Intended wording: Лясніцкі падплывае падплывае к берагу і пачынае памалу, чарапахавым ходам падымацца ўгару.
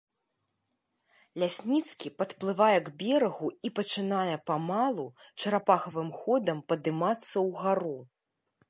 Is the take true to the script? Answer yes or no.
no